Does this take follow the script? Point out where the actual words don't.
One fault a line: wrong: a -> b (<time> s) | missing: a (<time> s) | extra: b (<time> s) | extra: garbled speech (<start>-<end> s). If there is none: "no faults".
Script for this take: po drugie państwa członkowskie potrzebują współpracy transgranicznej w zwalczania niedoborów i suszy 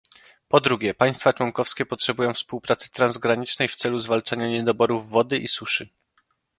extra: celu (3.8 s)
extra: wody (5.1 s)